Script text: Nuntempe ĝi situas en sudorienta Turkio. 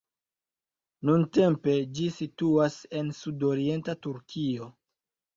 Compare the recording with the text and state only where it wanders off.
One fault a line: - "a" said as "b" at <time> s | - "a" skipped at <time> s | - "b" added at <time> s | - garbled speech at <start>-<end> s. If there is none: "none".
none